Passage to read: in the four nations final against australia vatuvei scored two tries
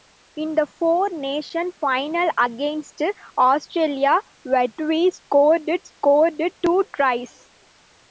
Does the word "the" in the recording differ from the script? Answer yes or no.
no